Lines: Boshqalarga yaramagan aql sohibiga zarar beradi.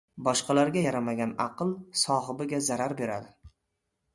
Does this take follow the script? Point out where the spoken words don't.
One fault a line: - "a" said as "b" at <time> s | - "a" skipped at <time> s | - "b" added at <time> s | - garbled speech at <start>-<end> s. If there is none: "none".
none